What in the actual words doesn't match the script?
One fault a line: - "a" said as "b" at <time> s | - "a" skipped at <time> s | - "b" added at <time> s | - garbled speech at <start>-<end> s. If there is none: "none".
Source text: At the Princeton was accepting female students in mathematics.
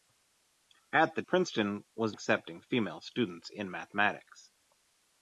none